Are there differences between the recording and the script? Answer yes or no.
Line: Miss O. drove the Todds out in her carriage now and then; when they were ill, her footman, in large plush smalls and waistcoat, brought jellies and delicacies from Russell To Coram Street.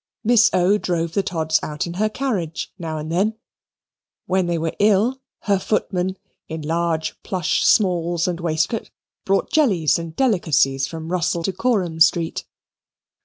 no